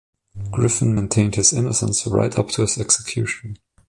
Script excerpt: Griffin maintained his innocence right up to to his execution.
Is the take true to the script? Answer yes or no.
no